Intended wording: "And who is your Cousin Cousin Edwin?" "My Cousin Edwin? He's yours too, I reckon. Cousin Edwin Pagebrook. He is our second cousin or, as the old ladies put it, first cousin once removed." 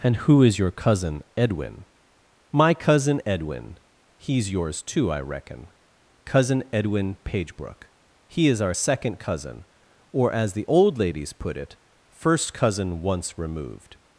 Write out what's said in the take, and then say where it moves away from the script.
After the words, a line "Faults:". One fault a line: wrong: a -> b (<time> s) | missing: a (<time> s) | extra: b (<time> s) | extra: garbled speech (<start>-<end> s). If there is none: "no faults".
"And who is your Cousin Edwin?" "My Cousin Edwin? He's yours too, I reckon. Cousin Edwin Pagebrook. He is our second cousin or, as the old ladies put it, first cousin once removed."
Faults:
missing: Cousin (1.2 s)